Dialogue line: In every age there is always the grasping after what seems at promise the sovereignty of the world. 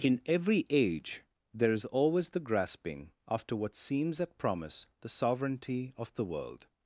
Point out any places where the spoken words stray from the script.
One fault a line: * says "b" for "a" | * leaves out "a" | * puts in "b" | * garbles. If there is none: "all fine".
all fine